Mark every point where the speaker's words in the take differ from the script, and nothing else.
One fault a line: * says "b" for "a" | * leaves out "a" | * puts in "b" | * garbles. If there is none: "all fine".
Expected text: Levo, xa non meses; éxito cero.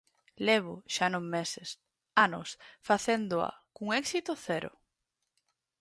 * puts in "anos facéndoa cun"